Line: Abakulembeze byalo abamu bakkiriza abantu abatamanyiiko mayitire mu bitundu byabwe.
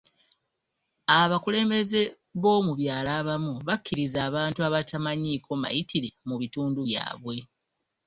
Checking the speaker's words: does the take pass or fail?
fail